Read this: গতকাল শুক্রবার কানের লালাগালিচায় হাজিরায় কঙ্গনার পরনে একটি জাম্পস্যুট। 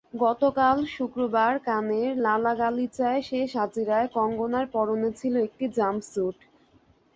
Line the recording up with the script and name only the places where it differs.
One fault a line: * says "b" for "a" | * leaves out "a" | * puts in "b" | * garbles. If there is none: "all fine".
* puts in "শেষ"
* puts in "ছিল"